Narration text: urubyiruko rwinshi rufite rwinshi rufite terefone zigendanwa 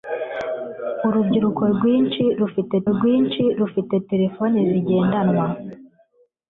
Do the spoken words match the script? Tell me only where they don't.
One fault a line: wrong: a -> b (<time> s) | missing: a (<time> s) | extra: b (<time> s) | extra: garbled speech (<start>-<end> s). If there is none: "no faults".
no faults